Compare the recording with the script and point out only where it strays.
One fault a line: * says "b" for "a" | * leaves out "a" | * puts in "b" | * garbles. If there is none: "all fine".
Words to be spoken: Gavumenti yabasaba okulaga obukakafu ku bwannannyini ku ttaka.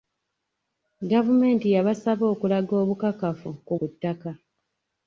* leaves out "bwannannyini"